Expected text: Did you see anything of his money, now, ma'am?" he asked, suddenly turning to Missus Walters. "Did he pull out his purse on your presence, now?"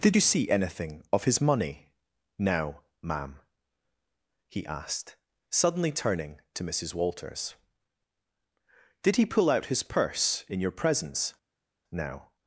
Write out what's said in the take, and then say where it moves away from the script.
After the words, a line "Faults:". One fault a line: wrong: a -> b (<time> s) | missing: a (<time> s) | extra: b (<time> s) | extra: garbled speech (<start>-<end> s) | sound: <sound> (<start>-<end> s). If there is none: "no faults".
Did you see anything of his money, now, ma'am?" he asked, suddenly turning to Missus Walters. "Did he pull out his purse in your presence, now?"
Faults:
wrong: on -> in (10.5 s)